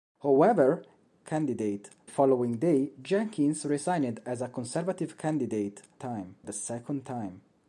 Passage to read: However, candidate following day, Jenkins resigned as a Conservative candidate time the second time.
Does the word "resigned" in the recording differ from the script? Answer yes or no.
no